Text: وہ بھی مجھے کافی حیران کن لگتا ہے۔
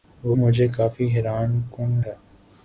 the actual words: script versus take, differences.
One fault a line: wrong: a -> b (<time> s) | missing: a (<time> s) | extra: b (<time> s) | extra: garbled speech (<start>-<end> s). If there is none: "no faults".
missing: بھی (0.3 s)
missing: لگتا (2.0 s)